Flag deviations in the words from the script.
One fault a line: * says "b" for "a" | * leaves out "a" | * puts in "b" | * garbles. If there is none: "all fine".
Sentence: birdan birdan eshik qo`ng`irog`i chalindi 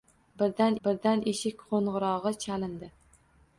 all fine